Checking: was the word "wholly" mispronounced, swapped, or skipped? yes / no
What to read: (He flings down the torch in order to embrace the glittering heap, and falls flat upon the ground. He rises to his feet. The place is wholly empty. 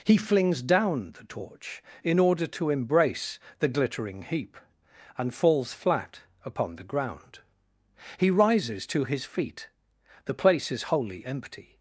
no